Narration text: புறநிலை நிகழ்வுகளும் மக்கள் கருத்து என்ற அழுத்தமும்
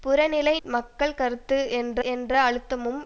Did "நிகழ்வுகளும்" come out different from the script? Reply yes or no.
yes